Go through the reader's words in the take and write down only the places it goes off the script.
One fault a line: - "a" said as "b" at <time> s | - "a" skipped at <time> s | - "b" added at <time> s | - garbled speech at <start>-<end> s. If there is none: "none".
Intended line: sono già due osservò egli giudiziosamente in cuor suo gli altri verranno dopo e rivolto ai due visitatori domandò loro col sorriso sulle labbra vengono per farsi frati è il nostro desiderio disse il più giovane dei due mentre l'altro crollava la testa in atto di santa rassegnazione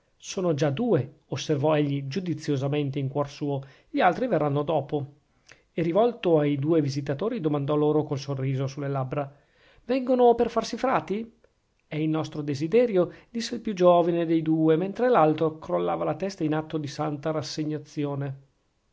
none